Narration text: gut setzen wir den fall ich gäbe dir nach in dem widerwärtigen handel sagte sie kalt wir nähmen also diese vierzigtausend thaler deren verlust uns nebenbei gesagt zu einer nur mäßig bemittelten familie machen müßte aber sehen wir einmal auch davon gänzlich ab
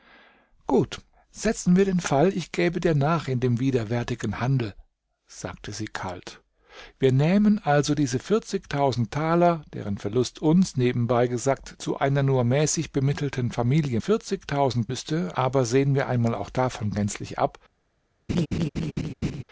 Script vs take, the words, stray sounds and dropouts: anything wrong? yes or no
yes